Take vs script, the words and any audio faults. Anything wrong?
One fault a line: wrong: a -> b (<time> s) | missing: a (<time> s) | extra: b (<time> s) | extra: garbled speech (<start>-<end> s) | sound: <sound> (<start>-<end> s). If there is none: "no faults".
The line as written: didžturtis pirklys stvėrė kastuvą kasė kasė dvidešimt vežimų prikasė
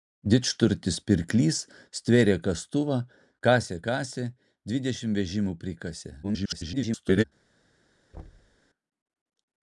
extra: garbled speech (6.2-7.2 s)
sound: thud (8.1-8.6 s)